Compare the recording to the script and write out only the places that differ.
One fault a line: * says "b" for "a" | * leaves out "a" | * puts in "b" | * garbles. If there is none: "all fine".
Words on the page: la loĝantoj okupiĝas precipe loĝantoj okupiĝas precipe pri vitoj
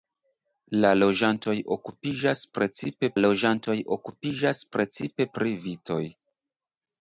all fine